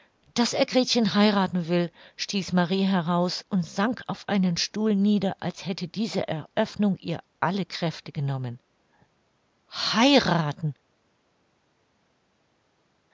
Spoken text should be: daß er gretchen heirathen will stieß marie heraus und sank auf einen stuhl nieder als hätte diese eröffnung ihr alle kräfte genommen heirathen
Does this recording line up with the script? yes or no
yes